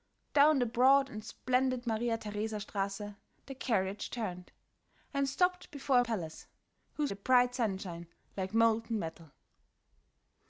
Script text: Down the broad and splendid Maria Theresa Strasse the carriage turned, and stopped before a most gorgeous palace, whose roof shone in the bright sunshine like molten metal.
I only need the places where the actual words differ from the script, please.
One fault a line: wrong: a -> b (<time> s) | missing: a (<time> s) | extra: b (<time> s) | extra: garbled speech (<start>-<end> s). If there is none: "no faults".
missing: most gorgeous (6.0 s)
missing: roof shone in (7.1 s)